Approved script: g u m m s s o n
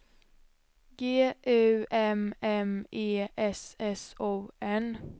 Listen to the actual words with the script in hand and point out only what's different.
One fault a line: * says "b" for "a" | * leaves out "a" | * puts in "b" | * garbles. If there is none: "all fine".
* puts in "e"